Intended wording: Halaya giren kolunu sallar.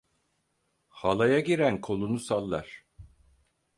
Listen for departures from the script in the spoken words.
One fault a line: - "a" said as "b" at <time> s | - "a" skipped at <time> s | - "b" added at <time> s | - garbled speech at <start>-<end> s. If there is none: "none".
none